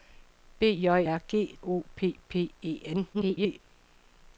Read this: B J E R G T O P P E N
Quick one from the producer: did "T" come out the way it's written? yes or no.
no